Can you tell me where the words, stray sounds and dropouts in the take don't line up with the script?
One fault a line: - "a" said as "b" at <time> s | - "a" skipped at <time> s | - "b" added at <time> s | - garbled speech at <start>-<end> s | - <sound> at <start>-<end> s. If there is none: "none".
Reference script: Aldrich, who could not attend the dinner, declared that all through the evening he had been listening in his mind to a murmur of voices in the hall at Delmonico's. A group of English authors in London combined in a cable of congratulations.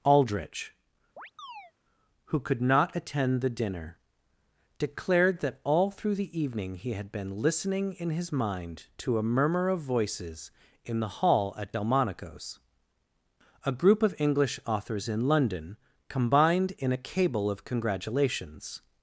- chirp at 1.2-1.7 s